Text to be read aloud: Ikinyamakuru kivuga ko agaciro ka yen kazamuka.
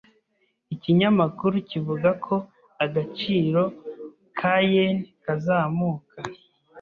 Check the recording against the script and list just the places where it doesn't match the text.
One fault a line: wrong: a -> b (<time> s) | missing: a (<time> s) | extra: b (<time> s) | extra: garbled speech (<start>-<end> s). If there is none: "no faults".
no faults